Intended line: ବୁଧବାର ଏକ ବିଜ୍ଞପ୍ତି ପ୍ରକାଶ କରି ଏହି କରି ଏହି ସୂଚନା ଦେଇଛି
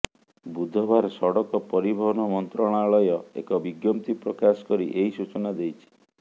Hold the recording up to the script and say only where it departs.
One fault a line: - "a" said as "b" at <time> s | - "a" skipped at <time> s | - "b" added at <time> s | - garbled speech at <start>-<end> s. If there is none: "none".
- "ସଡ଼କ ପରିବହନ ମନ୍ତ୍ରଣାଳୟ" added at 1.1 s
- "କରି ଏହି" skipped at 5.1 s